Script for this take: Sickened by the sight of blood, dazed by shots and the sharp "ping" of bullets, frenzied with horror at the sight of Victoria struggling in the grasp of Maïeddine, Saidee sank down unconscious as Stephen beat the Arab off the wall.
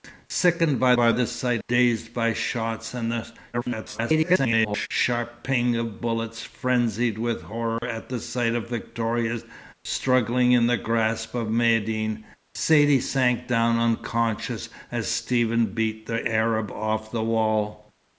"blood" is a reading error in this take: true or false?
true